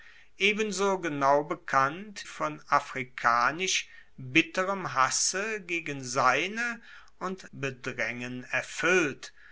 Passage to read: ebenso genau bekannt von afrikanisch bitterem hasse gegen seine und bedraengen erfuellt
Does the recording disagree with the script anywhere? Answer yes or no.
no